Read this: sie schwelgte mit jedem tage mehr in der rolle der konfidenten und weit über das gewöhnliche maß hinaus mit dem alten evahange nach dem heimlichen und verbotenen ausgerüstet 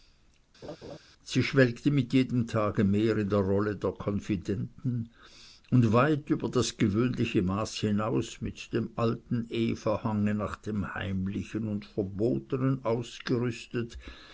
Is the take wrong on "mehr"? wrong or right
right